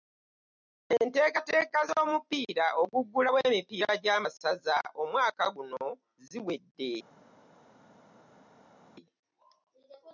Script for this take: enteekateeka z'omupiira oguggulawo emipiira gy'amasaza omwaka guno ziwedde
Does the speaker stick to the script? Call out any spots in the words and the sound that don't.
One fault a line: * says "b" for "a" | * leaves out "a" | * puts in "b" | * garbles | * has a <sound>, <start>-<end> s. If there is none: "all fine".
all fine